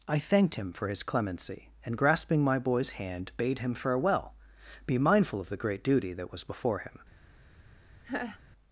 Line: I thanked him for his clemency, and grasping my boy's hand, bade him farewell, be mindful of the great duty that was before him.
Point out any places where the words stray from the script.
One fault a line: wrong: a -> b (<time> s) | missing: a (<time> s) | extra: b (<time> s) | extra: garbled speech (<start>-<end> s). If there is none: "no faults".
no faults